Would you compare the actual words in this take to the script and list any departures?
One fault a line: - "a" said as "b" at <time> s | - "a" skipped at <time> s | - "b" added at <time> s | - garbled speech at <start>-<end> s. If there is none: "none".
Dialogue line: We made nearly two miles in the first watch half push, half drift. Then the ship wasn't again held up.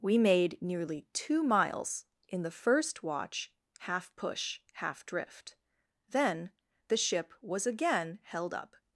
- "wasn't" said as "was" at 7.4 s